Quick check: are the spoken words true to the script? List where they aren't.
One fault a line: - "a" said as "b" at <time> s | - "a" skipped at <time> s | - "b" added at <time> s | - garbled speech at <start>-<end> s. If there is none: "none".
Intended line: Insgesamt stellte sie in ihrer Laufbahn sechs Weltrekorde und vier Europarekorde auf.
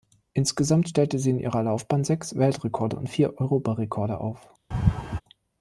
none